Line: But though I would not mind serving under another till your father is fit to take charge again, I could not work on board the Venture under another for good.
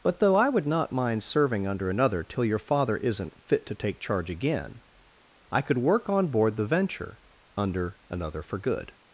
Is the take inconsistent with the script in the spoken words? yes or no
yes